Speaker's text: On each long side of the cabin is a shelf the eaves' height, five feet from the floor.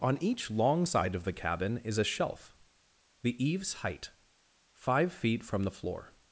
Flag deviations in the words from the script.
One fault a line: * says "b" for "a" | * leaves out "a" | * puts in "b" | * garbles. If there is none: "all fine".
all fine